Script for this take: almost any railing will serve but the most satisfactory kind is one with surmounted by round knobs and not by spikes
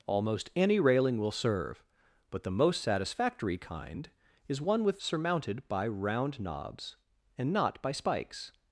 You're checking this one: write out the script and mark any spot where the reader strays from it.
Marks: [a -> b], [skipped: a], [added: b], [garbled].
almost any railing will serve but the most satisfactory kind is one with surmounted by round knobs and not by spikes